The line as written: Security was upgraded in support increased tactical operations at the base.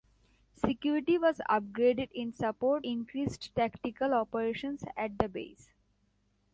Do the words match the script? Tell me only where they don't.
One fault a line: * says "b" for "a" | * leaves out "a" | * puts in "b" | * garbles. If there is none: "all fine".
all fine